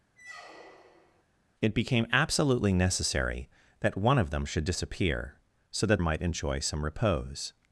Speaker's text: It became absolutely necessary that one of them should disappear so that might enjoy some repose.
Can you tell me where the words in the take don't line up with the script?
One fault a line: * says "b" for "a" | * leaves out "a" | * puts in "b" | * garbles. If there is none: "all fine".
all fine